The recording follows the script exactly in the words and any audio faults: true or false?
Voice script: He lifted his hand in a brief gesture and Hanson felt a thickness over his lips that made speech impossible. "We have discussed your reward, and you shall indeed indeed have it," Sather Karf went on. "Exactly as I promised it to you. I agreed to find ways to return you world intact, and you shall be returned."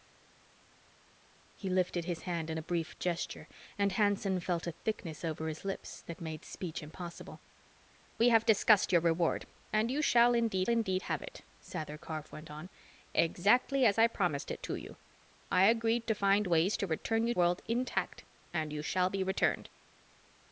true